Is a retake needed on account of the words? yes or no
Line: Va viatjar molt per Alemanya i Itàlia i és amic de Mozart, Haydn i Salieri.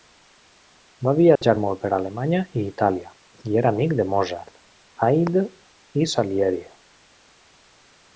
yes